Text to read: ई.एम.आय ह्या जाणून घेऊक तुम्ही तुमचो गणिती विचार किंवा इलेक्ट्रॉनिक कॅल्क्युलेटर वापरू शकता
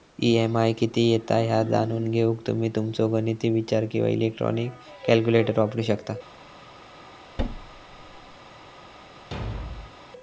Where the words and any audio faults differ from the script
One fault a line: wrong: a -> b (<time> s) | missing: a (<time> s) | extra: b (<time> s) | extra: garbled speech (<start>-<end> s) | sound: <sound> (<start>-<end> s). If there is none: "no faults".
extra: किती येता (0.7 s)
sound: thud (7.4-8.4 s)
sound: thud (9.3-10.0 s)